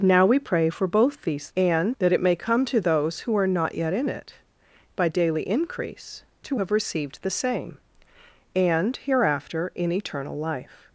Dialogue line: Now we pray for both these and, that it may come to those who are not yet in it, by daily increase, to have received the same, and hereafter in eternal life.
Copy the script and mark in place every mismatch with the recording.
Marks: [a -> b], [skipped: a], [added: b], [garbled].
Now we pray for both these and, that it may come to those who are not yet in it, by daily increase, to have received the same, and hereafter in eternal life.